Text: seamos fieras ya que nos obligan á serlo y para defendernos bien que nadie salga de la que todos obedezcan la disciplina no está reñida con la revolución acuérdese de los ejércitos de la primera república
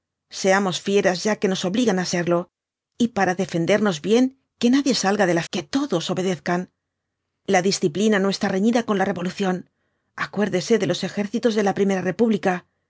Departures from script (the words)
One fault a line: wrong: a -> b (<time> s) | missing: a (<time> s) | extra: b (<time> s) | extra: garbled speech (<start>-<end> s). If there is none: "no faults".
no faults